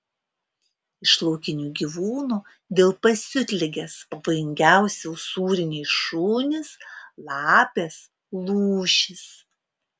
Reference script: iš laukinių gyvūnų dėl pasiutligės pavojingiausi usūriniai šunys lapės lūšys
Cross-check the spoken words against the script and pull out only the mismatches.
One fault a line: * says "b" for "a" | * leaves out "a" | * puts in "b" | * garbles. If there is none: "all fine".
all fine